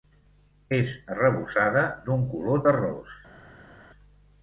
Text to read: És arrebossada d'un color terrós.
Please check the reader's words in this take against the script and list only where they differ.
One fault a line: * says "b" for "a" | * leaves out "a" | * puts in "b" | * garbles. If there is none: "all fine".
all fine